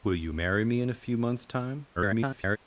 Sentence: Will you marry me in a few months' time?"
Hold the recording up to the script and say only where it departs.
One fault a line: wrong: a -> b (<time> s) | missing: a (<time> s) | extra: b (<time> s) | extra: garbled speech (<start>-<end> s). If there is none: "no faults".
extra: garbled speech (2.0-2.6 s)